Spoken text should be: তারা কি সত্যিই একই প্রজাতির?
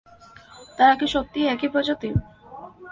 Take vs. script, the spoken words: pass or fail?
pass